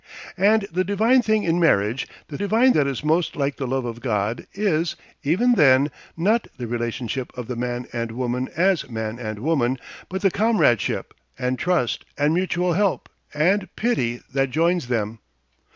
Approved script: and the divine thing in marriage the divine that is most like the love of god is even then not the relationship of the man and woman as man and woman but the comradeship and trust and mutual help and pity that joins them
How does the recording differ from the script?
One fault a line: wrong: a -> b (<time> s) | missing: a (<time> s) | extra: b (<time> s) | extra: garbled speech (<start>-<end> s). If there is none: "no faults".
no faults